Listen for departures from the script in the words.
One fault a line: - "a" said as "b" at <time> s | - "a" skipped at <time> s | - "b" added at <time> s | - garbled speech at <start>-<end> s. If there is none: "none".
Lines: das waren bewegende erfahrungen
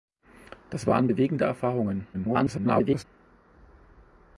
- garbled speech at 2.1-3.0 s